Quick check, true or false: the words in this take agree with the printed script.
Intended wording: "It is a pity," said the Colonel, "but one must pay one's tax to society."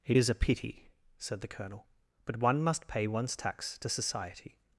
true